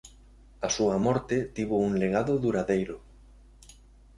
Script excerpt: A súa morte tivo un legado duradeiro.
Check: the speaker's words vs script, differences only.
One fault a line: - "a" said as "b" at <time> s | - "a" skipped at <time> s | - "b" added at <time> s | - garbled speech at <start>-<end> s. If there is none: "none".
none